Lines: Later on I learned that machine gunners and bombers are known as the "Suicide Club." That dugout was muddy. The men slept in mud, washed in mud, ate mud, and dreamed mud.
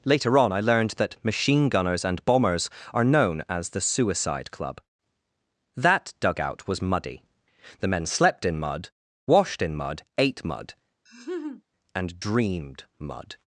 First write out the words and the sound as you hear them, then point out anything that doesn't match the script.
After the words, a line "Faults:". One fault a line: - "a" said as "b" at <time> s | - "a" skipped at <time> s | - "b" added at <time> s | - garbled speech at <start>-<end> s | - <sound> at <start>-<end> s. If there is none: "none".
Later on I learned that machine gunners and bombers are known as the "Suicide Club." That dugout was muddy. The men slept in mud, washed in mud, ate mud, and dreamed mud.
Faults:
- laugh at 11.1-11.6 s